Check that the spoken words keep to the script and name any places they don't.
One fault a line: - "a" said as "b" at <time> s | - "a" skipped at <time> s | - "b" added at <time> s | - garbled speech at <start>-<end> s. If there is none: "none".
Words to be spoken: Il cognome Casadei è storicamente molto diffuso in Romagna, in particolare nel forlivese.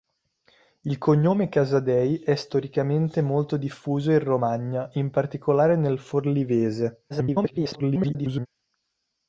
- garbled speech at 7.1-8.5 s